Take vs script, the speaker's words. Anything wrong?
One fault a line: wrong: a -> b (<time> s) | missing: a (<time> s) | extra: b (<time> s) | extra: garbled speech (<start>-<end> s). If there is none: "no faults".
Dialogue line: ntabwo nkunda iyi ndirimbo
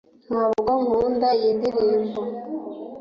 no faults